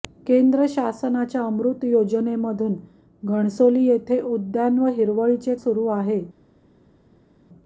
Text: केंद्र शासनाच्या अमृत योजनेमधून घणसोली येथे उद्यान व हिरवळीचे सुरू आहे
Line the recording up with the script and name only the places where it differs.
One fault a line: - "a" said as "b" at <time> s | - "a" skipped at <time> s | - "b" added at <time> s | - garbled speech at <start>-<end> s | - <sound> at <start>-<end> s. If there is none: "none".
none